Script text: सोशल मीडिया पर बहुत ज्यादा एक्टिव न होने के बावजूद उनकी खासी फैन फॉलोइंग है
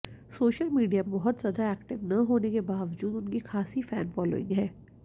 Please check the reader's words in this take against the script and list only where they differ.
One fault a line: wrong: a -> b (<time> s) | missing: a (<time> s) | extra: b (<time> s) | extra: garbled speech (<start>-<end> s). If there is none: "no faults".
missing: पर (1.0 s)